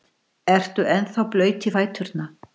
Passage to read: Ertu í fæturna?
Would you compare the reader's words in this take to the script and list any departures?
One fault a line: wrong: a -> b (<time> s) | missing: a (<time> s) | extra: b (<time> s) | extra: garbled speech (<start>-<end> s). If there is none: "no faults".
extra: ennþá blaut (0.9 s)